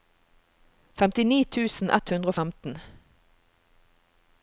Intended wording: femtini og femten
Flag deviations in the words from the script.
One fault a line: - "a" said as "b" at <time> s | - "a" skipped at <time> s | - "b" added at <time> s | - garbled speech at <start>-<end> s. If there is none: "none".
- "tusen ett hundre" added at 1.6 s